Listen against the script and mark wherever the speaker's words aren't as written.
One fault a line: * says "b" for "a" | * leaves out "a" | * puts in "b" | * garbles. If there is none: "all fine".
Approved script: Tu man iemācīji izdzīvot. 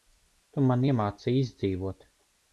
all fine